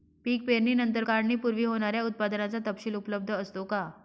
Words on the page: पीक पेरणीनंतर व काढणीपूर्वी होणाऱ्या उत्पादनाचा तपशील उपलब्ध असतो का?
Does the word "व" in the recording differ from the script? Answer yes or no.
yes